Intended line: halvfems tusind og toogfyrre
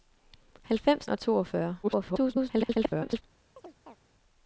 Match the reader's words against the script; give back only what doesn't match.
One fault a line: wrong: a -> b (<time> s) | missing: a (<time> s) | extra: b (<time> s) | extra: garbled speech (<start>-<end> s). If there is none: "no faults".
missing: tusind (1.1 s)
extra: garbled speech (1.8-3.2 s)